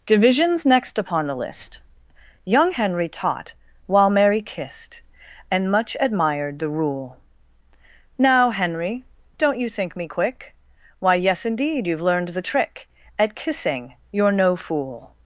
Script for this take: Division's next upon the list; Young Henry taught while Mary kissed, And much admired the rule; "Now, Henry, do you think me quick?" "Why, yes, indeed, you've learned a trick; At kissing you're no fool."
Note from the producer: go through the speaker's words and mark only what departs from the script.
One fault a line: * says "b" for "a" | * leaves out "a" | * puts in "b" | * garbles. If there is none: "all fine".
* says "don't" for "do"
* says "the" for "a"